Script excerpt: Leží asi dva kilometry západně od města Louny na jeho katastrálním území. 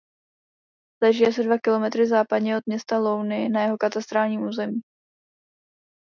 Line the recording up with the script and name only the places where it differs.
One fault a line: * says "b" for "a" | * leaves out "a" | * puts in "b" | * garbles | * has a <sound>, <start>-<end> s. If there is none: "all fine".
all fine